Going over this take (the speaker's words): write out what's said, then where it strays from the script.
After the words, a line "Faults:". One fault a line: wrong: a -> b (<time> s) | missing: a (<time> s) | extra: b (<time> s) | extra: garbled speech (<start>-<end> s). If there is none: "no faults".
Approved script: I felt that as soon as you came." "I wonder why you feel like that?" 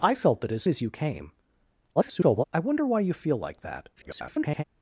I felt that as as you came." [garbled] "I wonder why you feel like that?" [garbled]
Faults:
missing: soon (0.6 s)
extra: garbled speech (2.0-2.4 s)
extra: garbled speech (4.0-4.6 s)